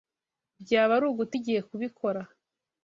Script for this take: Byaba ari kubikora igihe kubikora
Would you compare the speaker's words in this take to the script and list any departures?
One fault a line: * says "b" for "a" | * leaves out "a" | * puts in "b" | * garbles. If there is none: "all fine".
* says "uguta" for "kubikora"